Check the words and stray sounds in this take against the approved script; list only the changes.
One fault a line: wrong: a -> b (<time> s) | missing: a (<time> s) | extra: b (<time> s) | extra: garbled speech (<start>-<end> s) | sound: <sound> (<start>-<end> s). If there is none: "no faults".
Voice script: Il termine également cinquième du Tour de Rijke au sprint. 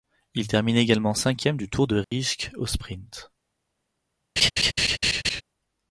sound: dropout (2.0-2.1 s)
sound: laugh (4.4-5.4 s)